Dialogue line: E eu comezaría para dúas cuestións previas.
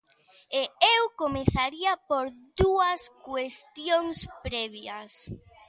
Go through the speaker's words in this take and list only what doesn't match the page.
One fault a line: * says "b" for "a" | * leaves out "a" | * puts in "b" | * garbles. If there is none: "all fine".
* says "por" for "para"